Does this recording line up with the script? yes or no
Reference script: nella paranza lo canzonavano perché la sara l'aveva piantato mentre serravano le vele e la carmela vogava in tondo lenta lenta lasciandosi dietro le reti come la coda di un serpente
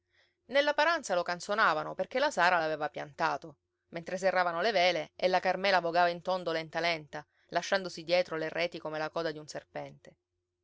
yes